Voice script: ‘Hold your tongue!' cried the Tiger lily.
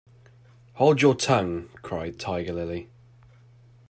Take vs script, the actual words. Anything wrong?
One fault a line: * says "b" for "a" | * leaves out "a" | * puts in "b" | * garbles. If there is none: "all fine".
* leaves out "the"